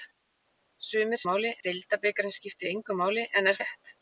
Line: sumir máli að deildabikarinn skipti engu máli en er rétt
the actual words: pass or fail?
pass